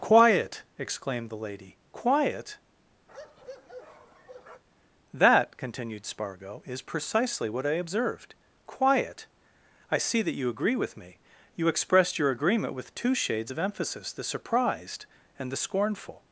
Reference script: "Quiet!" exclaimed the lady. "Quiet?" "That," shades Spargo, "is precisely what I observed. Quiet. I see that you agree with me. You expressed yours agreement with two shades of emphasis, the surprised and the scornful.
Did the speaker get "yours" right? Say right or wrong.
wrong